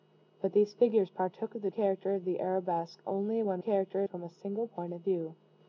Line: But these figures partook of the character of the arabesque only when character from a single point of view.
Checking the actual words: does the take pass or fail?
pass